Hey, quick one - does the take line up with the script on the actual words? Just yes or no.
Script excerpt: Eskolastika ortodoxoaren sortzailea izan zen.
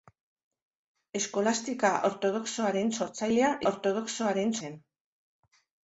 no